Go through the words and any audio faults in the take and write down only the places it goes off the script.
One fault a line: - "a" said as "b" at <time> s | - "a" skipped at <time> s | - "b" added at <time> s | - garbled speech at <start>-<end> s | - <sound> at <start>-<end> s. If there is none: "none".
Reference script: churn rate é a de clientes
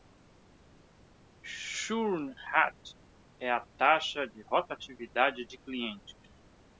- "taxa de rotatividade" added at 3.8 s